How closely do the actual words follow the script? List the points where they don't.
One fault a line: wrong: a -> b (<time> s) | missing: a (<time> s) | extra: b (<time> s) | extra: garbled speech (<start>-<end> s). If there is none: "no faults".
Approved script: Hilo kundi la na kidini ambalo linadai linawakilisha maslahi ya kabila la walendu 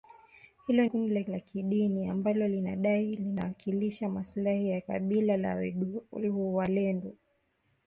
no faults